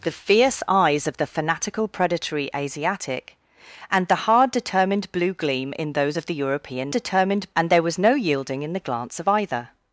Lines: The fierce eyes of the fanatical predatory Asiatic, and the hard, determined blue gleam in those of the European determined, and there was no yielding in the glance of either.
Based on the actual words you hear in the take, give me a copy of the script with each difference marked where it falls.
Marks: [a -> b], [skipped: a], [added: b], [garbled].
The fierce eyes of the fanatical predatory Asiatic, and the hard, determined blue gleam in those of the European determined, and there was no yielding in the glance of either.